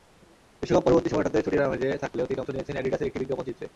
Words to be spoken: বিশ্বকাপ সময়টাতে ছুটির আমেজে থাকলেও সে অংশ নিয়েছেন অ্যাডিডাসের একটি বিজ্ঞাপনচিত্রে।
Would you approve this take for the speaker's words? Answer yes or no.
no